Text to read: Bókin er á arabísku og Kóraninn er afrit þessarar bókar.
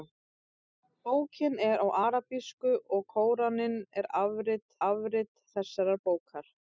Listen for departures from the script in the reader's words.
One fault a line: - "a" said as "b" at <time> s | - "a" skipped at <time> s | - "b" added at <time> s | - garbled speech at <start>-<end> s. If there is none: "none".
- "afrit" added at 4.9 s